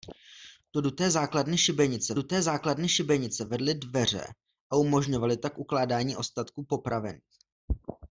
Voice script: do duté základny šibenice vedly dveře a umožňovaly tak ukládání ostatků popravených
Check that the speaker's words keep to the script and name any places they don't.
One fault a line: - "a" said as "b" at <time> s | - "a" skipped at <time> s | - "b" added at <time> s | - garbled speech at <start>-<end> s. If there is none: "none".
- "duté základny šibenice" added at 2.1 s